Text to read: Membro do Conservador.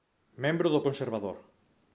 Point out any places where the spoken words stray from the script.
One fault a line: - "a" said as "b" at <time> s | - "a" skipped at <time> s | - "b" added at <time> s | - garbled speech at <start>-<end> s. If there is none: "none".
none